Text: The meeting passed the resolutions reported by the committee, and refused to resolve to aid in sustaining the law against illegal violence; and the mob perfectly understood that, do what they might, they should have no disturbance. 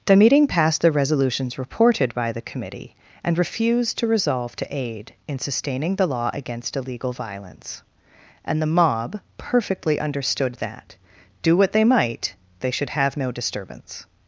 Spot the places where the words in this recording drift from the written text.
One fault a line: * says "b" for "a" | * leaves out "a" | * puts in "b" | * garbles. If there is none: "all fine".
all fine